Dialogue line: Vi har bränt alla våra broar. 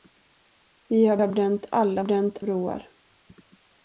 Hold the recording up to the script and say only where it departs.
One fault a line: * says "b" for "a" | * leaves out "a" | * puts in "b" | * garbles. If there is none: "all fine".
* puts in "har"
* says "bränt" for "våra"